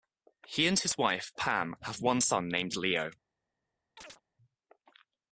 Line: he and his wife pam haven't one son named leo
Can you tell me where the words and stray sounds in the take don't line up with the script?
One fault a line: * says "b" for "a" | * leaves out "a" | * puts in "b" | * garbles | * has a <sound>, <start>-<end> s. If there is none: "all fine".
* says "have" for "haven't"
* has a chirp, 4.0-4.2 s